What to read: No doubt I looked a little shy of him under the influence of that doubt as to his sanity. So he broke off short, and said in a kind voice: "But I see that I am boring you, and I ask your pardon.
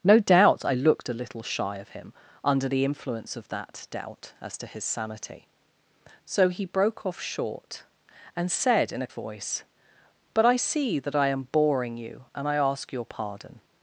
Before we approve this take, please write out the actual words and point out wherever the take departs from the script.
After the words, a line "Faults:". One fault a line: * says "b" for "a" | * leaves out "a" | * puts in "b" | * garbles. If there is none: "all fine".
No doubt I looked a little shy of him under the influence of that doubt as to his sanity. So he broke off short, and said in a voice: "But I see that I am boring you, and I ask your pardon.
Faults:
* leaves out "kind"